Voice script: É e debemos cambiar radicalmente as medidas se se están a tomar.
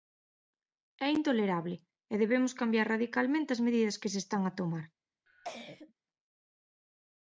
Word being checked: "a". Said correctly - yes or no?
yes